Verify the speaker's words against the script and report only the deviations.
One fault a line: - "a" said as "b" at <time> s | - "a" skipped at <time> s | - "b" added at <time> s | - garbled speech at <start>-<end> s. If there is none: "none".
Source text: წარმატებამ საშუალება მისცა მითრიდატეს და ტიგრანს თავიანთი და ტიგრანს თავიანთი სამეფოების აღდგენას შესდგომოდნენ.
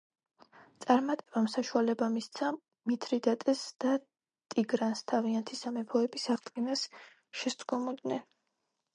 - "და ტიგრანს თავიანთი" skipped at 5.6 s